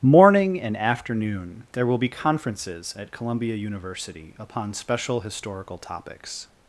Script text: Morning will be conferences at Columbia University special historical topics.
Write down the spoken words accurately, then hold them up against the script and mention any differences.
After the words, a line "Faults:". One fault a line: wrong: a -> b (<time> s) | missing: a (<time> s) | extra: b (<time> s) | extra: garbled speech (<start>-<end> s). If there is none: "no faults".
Morning and afternoon there will be conferences at Columbia University upon special historical topics.
Faults:
extra: and afternoon there (0.6 s)
extra: upon (4.4 s)